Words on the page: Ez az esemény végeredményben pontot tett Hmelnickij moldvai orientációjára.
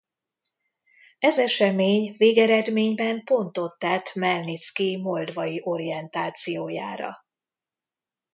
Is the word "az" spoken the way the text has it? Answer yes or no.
no